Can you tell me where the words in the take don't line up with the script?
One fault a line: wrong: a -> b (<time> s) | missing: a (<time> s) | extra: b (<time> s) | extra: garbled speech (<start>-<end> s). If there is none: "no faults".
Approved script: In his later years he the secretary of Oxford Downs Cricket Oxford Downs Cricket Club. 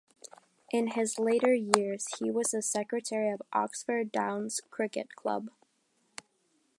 extra: was (2.3 s)
missing: Oxford Downs Cricket (5.2 s)